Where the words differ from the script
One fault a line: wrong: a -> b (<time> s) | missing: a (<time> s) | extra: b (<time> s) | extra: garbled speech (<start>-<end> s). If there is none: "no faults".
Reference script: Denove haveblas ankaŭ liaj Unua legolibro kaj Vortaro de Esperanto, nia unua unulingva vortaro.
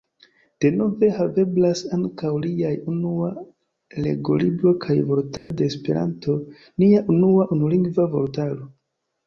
no faults